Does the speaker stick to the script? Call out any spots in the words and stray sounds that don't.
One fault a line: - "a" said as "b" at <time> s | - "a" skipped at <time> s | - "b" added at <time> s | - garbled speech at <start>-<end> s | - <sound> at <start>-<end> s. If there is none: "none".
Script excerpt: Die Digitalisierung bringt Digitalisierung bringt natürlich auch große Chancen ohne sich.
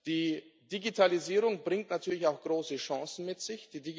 - "Digitalisierung bringt" skipped at 1.9 s
- "ohne" said as "mit" at 3.2 s